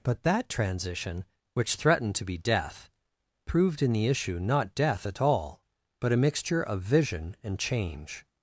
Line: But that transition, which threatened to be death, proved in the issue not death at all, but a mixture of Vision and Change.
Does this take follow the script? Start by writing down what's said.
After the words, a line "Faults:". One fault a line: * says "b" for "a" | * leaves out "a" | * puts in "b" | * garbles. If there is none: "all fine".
But that transition, which threatened to be death, proved in the issue not death at all, but a mixture of Vision and Change.
Faults:
all fine